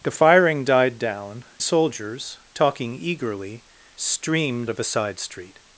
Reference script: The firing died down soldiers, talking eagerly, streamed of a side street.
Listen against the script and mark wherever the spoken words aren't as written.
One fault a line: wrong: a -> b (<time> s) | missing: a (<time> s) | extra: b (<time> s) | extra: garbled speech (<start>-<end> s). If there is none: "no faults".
no faults